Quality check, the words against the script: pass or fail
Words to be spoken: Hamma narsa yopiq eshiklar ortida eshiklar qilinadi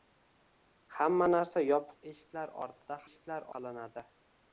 pass